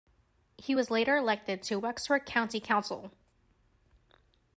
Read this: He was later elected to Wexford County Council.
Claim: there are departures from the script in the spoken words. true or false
false